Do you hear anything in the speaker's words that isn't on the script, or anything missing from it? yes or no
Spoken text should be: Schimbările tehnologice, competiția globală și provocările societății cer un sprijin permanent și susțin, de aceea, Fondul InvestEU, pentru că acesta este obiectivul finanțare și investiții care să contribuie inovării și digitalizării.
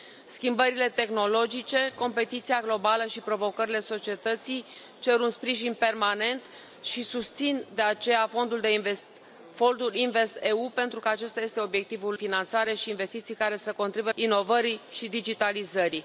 no